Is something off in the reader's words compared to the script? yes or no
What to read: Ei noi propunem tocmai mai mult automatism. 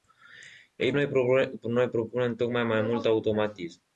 no